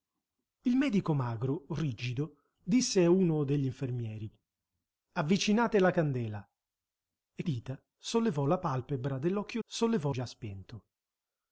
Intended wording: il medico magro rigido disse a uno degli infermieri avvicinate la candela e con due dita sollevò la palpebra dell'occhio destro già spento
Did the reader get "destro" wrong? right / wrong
wrong